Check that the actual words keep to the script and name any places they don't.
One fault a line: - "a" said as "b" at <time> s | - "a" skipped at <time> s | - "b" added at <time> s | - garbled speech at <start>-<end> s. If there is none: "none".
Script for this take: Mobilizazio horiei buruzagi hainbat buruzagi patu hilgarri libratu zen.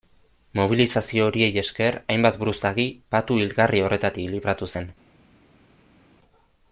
- "buruzagi" said as "esker" at 1.6 s
- "horretatik" added at 3.9 s